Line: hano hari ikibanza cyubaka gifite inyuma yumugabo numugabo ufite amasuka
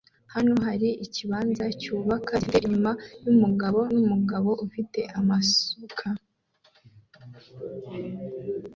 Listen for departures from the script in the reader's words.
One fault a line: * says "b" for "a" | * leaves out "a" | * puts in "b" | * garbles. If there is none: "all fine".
all fine